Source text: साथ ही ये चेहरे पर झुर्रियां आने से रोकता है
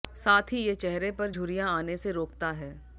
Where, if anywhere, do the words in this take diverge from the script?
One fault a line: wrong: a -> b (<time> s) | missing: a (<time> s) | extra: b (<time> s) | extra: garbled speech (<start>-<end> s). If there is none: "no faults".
no faults